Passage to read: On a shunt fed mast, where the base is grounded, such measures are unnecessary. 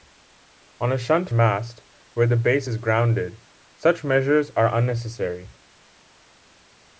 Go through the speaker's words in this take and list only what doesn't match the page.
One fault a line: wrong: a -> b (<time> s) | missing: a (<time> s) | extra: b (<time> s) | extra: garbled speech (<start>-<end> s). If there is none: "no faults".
missing: fed (1.3 s)